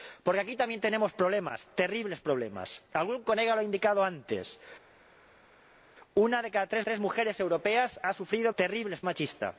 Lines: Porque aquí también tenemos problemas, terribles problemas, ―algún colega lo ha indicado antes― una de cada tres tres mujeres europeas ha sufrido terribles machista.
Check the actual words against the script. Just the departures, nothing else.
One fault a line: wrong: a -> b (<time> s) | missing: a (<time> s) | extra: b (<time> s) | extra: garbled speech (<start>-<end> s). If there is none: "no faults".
no faults